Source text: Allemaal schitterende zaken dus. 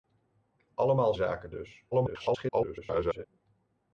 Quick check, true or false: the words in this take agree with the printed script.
false